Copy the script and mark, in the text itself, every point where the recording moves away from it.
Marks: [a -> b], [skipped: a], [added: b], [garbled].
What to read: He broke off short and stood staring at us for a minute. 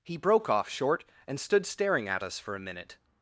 He broke off short and stood staring at us for a minute.